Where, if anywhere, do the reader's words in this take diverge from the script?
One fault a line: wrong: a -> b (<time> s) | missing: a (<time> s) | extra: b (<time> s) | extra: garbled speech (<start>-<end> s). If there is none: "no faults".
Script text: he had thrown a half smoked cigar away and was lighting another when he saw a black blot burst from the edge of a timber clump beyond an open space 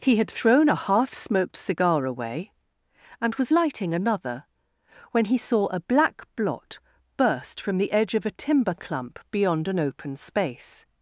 no faults